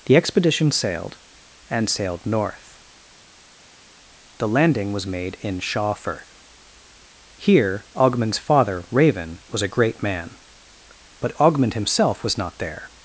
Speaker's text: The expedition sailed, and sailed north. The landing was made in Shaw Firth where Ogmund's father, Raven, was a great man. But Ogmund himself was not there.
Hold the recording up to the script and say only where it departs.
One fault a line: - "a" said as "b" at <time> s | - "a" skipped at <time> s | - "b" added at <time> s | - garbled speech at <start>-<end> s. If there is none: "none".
- "where" said as "here" at 7.4 s